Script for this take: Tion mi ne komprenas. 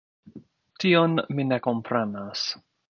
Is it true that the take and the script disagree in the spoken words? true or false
false